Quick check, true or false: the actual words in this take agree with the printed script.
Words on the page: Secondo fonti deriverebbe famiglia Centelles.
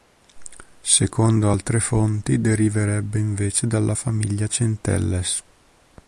false